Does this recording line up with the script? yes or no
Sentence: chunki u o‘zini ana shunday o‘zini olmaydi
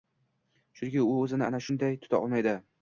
no